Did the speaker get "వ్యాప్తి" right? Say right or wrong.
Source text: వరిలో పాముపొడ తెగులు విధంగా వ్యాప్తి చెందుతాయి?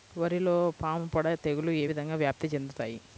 right